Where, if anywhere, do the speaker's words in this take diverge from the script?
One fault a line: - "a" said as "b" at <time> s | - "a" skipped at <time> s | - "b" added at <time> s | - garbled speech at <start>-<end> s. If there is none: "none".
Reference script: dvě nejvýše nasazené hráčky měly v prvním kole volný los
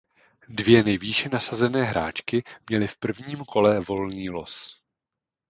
none